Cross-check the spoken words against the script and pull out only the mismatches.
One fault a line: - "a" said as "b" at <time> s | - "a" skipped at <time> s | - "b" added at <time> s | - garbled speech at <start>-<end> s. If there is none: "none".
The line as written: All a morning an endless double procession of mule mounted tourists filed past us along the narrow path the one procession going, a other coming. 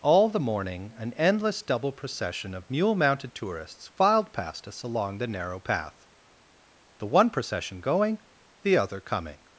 - "a" said as "the" at 0.3 s
- "a" said as "the" at 8.6 s